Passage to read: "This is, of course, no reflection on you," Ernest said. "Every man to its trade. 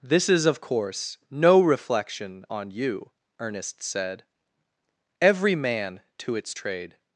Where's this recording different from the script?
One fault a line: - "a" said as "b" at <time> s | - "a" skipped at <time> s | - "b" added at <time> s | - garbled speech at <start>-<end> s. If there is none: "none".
none